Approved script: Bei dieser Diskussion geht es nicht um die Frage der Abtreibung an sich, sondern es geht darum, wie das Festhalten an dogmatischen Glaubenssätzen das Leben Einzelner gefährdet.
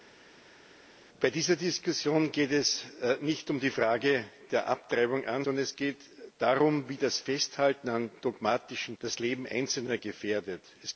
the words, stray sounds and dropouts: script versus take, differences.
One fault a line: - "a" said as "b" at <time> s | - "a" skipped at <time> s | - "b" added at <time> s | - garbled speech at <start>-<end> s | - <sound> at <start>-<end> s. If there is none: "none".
- "sich" skipped at 5.4 s
- "Glaubenssätzen" skipped at 9.0 s